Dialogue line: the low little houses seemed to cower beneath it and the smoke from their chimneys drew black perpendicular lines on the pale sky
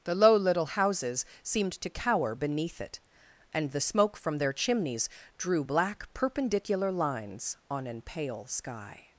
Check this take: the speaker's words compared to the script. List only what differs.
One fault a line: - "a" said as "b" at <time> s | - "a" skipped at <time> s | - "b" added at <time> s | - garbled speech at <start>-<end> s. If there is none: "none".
- "the" said as "an" at 7.9 s